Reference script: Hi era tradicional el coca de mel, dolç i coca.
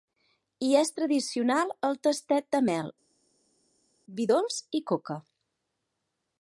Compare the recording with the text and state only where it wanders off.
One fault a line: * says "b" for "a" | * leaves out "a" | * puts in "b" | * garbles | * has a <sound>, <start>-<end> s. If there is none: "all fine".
* says "és" for "era"
* says "tastet" for "coca"
* puts in "vi"